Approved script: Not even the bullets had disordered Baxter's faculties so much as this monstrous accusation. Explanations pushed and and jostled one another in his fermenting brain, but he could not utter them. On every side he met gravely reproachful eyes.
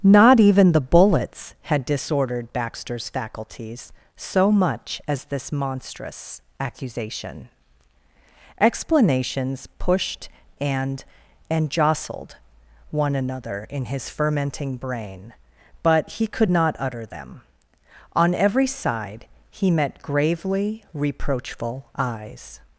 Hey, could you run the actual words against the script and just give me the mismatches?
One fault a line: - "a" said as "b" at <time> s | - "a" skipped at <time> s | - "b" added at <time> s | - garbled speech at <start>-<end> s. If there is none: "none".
none